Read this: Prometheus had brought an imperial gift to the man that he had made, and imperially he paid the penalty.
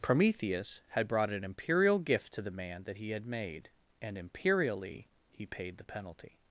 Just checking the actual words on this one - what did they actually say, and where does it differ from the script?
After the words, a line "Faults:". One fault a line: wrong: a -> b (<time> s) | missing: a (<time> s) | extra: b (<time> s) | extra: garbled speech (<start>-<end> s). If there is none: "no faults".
Prometheus had brought an imperial gift to the man that he had made, and imperially he paid the penalty.
Faults:
no faults